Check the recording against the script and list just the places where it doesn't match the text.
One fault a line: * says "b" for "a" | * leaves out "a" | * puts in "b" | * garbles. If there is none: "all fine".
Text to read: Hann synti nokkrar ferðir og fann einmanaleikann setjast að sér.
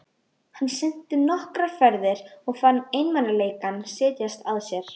all fine